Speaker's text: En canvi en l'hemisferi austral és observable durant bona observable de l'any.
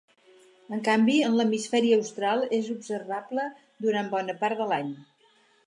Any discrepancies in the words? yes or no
yes